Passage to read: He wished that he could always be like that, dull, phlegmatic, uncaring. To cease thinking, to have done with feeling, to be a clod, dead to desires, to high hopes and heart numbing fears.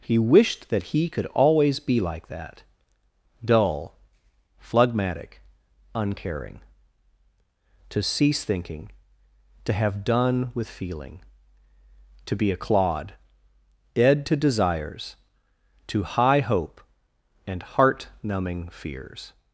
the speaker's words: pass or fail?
fail